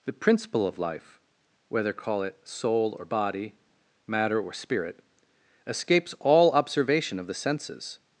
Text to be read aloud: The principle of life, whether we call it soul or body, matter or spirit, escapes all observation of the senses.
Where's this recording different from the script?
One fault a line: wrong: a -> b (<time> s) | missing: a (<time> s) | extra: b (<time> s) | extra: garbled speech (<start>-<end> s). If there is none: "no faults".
missing: we (1.9 s)